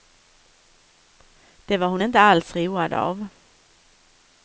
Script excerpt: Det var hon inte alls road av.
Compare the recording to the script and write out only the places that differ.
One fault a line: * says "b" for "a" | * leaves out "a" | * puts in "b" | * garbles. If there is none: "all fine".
all fine